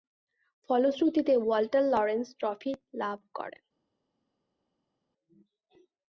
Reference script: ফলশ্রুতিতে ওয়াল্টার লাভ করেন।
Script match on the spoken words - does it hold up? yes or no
no